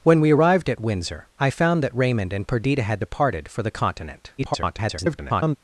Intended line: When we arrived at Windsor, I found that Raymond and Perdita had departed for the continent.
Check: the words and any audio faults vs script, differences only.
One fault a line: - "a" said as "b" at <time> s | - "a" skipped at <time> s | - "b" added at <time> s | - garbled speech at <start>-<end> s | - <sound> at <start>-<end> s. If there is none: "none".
- garbled speech at 4.4-5.6 s